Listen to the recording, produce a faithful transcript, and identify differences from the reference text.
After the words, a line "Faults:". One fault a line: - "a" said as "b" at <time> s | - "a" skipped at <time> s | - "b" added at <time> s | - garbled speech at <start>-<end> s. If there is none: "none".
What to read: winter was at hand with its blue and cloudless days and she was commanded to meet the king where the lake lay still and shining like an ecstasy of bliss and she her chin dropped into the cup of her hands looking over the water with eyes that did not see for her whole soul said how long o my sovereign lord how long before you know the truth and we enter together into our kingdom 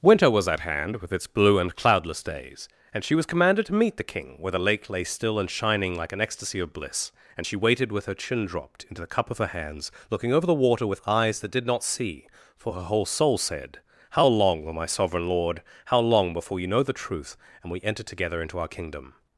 winter was at hand with its blue and cloudless days and she was commanded to meet the king where the lake lay still and shining like an ecstasy of bliss and she waited with her chin dropped into the cup of her hands looking over the water with eyes that did not see for her whole soul said how long o my sovereign lord how long before you know the truth and we enter together into our kingdom
Faults:
- "waited with" added at 7.6 s